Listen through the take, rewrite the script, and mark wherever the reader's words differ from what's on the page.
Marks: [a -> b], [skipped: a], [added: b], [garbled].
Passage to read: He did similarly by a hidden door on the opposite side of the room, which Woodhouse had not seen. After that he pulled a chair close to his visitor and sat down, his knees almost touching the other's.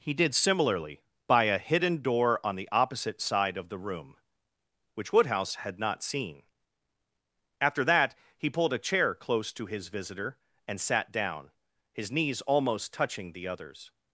He did similarly by a hidden door on the opposite side of the room, which Woodhouse had not seen. After that he pulled a chair close to his visitor and sat down, his knees almost touching the other's.